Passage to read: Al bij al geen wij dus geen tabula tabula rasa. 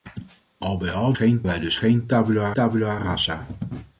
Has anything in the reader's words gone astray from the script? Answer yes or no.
no